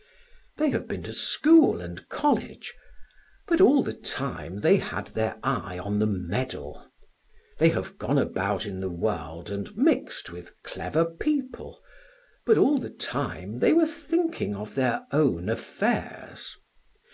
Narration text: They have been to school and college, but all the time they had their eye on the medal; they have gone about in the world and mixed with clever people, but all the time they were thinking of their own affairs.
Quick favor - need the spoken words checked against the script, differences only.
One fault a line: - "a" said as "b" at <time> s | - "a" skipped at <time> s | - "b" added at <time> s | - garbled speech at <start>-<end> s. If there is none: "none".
none